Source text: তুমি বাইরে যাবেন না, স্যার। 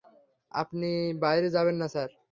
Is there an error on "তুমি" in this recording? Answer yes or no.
yes